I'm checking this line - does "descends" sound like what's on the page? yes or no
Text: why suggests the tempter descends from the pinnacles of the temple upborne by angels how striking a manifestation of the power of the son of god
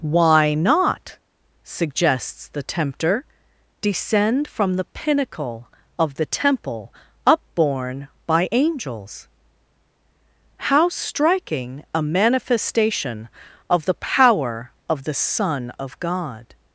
no